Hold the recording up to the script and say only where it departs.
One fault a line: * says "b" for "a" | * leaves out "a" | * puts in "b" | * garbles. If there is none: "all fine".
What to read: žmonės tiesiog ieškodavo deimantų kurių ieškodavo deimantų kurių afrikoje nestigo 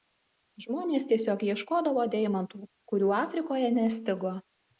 * leaves out "ieškodavo deimantų kurių"